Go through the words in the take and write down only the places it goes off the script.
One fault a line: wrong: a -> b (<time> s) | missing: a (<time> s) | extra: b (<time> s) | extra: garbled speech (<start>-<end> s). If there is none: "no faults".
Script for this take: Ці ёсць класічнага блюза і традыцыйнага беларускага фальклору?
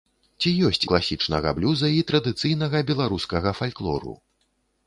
no faults